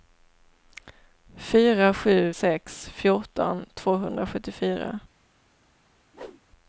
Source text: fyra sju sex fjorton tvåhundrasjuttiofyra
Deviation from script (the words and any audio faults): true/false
true